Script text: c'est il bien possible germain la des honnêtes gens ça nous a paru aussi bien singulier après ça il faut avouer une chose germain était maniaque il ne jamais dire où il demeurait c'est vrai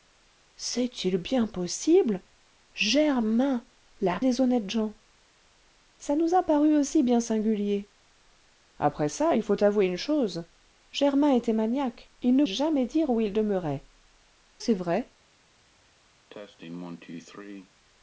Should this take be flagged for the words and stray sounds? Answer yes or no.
yes